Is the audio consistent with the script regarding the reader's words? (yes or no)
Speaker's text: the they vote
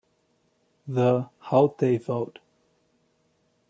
no